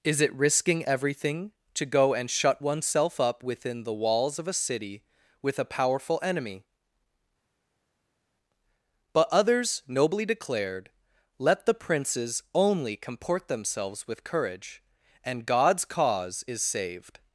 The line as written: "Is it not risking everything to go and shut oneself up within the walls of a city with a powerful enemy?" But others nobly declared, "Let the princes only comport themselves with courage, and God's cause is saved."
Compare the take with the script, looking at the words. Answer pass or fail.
fail